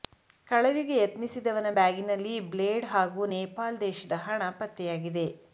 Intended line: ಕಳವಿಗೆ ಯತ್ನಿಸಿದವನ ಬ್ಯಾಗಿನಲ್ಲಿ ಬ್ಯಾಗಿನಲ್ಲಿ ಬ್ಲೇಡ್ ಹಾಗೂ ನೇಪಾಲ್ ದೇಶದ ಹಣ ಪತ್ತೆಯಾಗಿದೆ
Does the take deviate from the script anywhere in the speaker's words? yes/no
yes